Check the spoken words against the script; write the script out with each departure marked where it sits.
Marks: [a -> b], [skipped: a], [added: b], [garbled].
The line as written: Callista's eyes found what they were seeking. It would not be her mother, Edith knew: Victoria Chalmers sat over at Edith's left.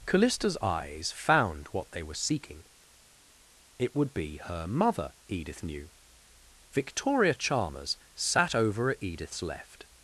Callista's eyes found what they were seeking. It would [skipped: not] be her mother, Edith knew: Victoria Chalmers sat over at Edith's left.